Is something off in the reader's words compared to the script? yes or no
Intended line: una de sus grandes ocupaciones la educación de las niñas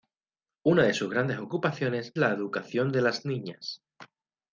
no